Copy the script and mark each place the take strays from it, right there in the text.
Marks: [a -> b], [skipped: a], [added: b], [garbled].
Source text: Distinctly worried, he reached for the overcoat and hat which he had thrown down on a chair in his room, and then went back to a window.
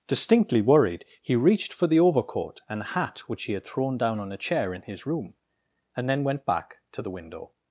Distinctly worried, he reached for the overcoat and hat which he had thrown down on a chair in his room, and then went back to [a -> the] window.